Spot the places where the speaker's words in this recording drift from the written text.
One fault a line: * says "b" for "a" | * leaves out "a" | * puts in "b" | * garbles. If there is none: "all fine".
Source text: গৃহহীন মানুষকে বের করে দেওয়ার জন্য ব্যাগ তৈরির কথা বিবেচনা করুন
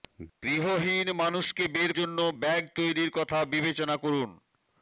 * leaves out "করে দেওয়ার"